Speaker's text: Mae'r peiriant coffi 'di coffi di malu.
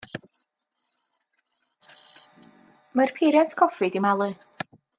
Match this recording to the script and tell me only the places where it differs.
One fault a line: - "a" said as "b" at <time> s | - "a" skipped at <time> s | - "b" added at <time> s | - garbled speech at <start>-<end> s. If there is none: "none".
- "coffi di" skipped at 4.0 s